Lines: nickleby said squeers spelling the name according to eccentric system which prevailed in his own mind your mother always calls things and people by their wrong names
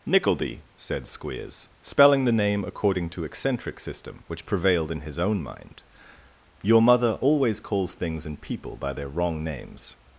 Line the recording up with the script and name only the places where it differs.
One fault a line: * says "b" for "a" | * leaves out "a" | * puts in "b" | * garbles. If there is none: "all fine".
all fine